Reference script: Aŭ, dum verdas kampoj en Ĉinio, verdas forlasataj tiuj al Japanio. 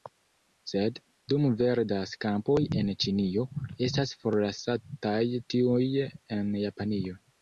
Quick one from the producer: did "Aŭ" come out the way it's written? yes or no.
no